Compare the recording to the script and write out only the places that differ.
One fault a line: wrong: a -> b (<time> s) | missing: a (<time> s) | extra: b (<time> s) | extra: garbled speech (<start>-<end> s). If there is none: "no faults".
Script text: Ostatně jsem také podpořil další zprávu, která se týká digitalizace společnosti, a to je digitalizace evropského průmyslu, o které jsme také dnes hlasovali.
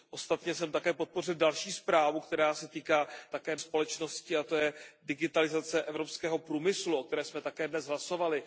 wrong: digitalizace -> také (3.3 s)